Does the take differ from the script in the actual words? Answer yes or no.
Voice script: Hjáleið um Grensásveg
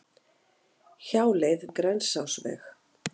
no